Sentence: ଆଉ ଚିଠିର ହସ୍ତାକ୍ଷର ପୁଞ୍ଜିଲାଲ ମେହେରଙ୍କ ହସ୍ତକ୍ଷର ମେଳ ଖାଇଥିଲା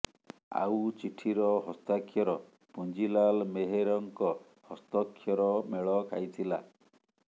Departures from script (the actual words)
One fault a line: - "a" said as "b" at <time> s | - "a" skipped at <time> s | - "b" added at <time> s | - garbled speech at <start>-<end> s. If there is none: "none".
none